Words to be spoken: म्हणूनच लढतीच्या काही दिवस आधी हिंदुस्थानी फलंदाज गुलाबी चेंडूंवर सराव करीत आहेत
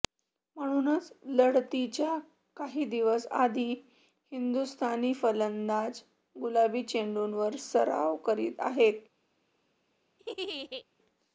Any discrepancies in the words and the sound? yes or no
yes